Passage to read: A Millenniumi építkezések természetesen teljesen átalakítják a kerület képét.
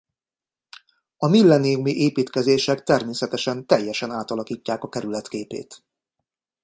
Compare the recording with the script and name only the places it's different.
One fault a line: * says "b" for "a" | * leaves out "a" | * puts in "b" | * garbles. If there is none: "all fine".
all fine